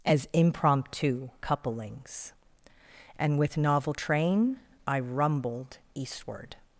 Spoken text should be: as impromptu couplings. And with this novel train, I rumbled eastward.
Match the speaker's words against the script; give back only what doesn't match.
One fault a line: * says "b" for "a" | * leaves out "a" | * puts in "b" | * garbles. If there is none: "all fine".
* leaves out "this"